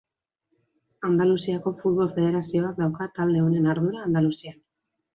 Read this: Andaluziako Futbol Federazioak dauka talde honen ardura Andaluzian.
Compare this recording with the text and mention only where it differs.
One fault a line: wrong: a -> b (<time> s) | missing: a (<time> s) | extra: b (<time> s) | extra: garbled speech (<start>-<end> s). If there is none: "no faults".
no faults